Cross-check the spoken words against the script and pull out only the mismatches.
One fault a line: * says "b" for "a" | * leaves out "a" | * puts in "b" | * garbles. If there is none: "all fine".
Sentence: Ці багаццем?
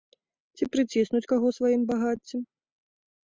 * puts in "прыціснуць каго сваім"